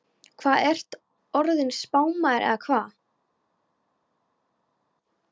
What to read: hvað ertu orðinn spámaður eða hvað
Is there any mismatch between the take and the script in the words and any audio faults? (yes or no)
no